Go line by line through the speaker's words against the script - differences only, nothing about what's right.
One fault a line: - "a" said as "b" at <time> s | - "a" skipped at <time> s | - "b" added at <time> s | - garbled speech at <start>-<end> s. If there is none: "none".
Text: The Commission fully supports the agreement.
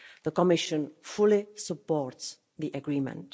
none